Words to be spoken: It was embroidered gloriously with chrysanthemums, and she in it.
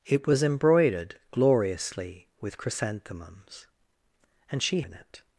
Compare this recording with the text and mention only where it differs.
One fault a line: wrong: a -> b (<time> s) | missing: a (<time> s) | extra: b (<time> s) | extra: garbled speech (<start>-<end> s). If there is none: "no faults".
no faults